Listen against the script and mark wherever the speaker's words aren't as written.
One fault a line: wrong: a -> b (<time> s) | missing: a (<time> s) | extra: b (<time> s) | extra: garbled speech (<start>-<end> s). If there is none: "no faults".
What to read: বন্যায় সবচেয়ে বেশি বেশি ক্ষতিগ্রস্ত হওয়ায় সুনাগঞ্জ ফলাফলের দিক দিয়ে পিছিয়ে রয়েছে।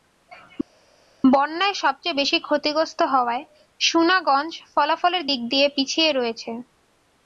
missing: বেশি (2.4 s)